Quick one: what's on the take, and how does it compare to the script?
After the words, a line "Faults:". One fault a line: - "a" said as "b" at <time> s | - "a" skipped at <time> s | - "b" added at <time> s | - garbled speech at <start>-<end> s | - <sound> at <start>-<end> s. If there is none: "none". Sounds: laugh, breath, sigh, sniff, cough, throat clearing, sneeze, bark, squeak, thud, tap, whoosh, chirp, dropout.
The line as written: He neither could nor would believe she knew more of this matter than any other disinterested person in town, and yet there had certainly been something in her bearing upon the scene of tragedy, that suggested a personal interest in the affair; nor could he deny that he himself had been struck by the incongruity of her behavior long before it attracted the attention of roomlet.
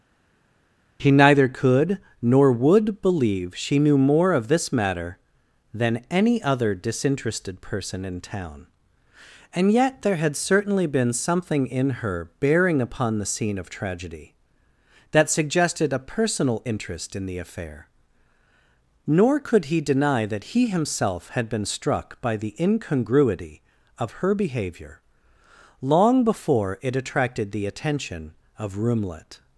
He neither could nor would believe she knew more of this matter than any other disinterested person in town, and yet there had certainly been something in her bearing upon the scene of tragedy, that suggested a personal interest in the affair; nor could he deny that he himself had been struck by the incongruity of her behavior long before it attracted the attention of roomlet.
Faults:
none